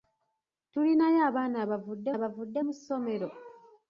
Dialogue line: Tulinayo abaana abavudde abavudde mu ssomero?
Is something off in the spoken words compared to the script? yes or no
no